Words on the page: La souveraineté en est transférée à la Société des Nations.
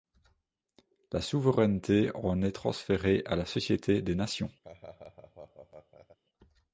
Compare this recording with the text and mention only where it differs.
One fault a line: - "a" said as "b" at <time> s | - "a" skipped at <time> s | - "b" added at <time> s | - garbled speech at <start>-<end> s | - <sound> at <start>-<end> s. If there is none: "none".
- laugh at 4.6-6.2 s